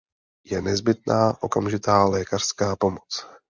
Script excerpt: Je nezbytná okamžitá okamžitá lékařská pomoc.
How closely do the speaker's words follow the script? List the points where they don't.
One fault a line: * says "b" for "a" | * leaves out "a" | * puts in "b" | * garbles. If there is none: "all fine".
* leaves out "okamžitá"